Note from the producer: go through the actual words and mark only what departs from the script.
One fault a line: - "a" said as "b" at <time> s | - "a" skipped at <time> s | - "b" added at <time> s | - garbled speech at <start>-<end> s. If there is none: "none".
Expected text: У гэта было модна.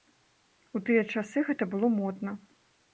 - "тыя часы" added at 0.9 s